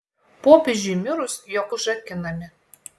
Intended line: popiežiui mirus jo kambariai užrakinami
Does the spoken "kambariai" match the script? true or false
false